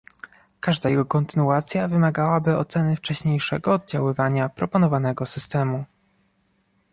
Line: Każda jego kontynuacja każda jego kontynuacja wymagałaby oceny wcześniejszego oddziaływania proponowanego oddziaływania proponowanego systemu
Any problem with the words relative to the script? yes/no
yes